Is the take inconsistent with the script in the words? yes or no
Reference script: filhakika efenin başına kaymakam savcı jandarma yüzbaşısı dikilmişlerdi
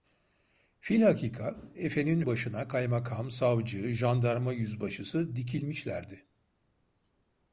no